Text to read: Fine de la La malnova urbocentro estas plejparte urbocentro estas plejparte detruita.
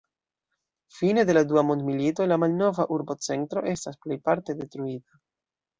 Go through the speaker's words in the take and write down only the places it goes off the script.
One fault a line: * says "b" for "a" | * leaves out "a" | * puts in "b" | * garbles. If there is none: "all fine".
* puts in "Dua Mondmilito"
* leaves out "urbocentro estas plejparte"